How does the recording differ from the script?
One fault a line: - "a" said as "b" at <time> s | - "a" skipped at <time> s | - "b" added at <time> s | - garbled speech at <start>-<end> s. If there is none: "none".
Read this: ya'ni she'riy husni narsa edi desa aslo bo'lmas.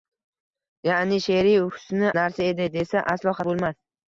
none